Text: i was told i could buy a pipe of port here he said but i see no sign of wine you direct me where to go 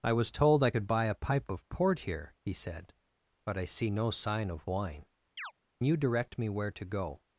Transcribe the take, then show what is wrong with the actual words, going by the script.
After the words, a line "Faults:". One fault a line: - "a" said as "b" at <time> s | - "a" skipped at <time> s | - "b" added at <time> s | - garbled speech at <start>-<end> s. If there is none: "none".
i was told i could buy a pipe of port here he said but i see no sign of wine you direct me where to go
Faults:
none